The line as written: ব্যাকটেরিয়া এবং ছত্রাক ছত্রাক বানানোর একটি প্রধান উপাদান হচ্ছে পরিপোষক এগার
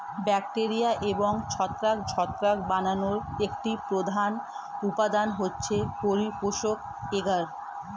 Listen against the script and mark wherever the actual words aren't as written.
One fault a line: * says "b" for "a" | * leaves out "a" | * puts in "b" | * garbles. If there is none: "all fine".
all fine